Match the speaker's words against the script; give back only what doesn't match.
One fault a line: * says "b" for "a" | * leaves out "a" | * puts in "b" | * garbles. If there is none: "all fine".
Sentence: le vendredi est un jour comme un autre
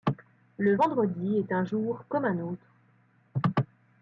all fine